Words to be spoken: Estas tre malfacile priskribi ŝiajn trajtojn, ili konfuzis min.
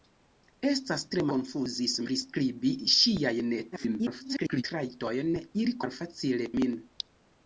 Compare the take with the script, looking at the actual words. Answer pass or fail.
fail